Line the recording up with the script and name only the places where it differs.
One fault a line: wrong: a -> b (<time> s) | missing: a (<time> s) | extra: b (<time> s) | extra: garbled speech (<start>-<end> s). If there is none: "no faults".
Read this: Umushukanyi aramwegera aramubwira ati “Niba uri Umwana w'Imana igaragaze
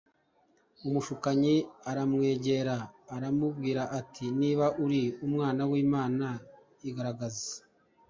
no faults